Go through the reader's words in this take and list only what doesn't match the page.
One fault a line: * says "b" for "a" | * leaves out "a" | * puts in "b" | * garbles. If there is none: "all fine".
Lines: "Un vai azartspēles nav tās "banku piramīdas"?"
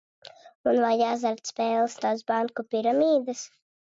* leaves out "nav"